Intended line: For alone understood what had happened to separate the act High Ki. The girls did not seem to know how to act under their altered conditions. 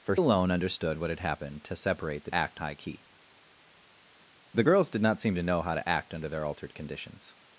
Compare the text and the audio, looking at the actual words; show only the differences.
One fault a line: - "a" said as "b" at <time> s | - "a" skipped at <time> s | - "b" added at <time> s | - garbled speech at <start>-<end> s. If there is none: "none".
none